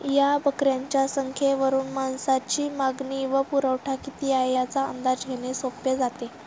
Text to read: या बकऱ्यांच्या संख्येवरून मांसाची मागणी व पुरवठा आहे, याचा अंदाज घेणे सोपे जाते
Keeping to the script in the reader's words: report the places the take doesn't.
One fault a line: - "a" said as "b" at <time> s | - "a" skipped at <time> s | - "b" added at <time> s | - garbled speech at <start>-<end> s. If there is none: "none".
- "किती" added at 4.0 s